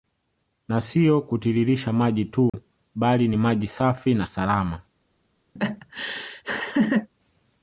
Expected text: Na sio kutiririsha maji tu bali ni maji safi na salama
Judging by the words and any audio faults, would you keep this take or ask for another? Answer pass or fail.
fail